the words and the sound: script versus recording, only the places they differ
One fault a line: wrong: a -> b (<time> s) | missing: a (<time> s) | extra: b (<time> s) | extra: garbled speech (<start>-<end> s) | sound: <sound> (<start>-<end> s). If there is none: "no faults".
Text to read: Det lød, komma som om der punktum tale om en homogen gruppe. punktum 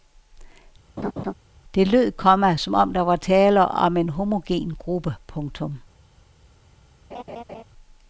sound: laugh (1.0-1.3 s)
wrong: punktum -> var (3.0 s)
sound: laugh (7.1-7.6 s)